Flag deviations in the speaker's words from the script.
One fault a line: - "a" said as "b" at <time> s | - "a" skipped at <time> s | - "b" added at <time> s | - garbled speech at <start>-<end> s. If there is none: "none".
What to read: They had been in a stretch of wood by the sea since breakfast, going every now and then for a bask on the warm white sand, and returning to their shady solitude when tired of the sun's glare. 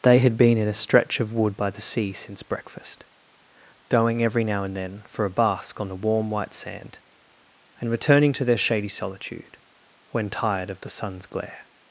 none